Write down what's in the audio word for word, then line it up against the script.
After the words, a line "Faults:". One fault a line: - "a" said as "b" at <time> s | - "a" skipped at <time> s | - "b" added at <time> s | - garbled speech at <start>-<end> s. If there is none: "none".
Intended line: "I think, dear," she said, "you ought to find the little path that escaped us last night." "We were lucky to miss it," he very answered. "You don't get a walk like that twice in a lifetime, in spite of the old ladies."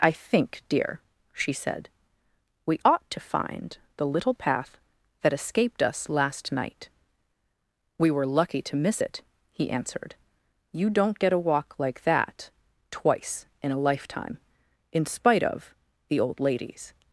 "I think, dear," she said, "we ought to find the little path that escaped us last night." "We were lucky to miss it," he answered. "You don't get a walk like that twice in a lifetime, in spite of the old ladies."
Faults:
- "you" said as "we" at 2.6 s
- "very" skipped at 9.7 s